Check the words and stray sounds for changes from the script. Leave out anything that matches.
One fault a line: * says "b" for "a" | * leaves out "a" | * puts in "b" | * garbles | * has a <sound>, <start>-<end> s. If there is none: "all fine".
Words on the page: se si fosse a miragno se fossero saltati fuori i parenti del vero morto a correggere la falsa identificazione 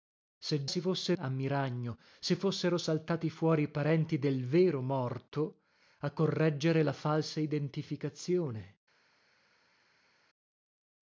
all fine